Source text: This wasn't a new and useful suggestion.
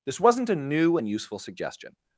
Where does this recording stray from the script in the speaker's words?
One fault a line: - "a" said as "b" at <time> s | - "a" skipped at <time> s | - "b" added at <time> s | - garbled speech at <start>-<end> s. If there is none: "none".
none